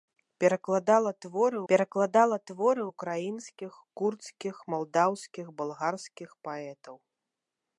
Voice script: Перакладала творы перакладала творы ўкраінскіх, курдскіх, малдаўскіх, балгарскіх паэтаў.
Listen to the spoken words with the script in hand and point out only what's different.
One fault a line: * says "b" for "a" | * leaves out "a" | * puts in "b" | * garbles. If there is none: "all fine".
all fine